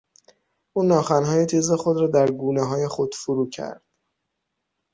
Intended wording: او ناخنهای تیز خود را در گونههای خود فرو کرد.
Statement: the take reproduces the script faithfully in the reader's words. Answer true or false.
true